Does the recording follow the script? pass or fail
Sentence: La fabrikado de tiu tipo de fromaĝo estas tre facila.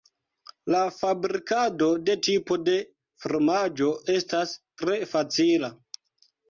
fail